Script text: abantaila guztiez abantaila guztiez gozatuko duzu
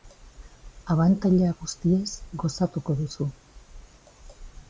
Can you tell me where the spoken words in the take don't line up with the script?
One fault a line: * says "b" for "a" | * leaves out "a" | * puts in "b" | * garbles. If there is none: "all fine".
* leaves out "abantaila guztiez"